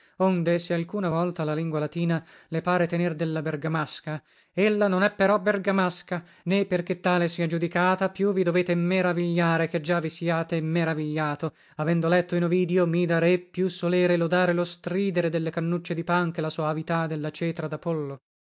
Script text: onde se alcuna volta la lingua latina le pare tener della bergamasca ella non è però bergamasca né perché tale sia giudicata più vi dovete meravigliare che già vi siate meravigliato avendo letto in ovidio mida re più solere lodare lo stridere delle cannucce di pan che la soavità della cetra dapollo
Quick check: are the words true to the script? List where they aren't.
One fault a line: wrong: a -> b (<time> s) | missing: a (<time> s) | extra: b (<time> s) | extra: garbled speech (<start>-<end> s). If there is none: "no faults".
no faults